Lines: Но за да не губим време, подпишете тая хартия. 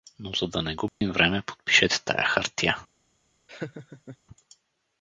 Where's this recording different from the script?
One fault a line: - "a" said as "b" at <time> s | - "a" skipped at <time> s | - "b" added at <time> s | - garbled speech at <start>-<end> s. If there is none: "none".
none